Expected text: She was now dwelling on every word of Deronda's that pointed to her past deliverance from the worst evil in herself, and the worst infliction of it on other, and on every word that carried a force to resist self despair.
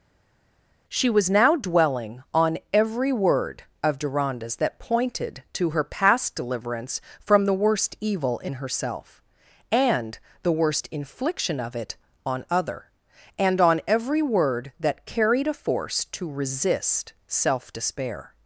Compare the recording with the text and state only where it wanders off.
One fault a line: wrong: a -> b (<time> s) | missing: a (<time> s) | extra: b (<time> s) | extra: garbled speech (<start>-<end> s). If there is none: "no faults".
no faults